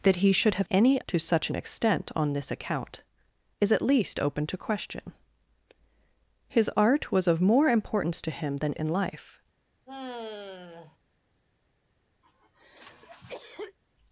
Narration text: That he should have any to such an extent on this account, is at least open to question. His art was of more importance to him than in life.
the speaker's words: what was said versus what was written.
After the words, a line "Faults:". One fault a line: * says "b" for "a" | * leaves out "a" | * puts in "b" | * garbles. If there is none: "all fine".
That he should have any to such an extent on this account, is at least open to question. His art was of more importance to him than in life.
Faults:
all fine